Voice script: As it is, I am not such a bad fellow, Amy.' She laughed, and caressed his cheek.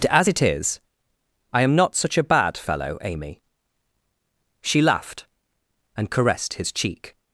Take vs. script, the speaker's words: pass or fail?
pass